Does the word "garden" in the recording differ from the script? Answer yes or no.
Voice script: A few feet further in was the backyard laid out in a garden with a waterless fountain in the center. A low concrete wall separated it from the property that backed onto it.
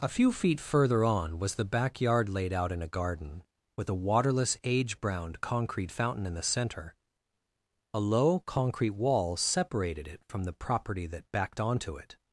no